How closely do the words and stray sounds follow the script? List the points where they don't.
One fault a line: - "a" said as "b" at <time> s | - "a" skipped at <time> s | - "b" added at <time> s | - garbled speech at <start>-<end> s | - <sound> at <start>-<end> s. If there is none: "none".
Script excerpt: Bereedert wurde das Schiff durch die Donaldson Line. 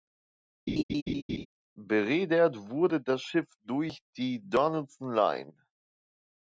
- laugh at 0.7-1.5 s